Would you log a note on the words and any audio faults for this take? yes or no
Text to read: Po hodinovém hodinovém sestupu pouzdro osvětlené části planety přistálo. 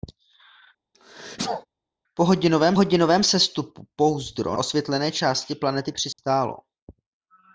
yes